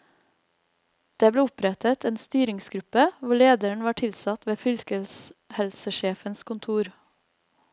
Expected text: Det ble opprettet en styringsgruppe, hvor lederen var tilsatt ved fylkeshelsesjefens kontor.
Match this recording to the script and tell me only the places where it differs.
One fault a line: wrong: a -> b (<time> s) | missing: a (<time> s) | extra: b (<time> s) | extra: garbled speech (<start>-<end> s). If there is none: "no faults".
no faults